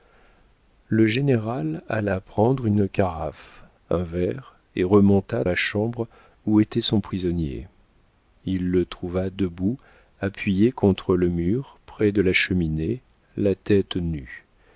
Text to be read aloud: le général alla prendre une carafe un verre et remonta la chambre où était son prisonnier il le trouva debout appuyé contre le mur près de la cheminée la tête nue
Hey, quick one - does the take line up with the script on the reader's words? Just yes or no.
yes